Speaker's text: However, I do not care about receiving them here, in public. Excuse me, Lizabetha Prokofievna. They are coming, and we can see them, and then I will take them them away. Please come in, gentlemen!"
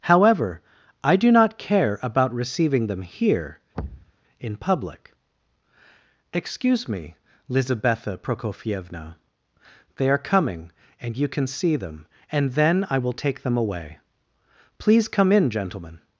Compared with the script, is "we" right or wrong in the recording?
wrong